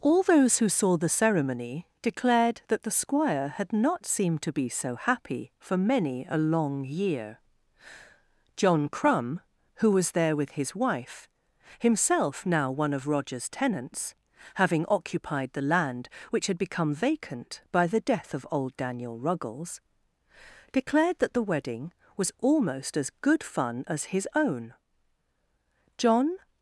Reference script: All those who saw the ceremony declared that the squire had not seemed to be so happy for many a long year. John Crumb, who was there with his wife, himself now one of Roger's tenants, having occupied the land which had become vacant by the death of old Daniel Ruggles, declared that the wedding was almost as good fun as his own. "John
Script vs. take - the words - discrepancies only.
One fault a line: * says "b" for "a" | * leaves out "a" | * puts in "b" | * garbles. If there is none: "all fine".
all fine